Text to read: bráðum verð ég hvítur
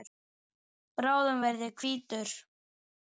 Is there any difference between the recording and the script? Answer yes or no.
no